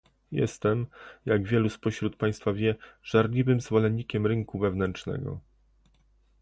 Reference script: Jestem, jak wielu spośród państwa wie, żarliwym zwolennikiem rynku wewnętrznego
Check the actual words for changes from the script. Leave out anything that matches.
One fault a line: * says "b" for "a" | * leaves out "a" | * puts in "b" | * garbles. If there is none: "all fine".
all fine